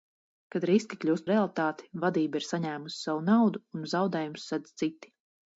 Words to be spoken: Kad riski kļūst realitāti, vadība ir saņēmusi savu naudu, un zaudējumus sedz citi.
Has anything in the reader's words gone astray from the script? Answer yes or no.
no